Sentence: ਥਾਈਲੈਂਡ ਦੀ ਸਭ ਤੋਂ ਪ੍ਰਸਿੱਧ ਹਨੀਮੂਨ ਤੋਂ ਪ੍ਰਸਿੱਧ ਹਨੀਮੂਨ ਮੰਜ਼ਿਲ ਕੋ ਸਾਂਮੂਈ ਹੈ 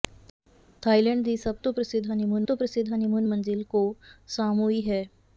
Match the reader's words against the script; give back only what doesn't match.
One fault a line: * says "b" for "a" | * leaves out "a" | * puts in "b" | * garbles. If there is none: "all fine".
all fine